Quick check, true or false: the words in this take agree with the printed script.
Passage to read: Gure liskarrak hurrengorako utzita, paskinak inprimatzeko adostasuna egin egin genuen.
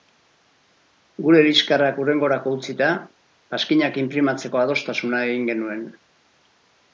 false